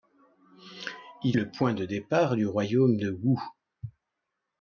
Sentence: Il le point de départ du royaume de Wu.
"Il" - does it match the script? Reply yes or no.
yes